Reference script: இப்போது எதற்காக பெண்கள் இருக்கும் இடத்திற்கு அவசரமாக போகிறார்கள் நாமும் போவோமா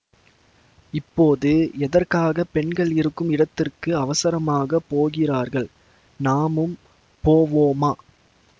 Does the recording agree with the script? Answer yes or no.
yes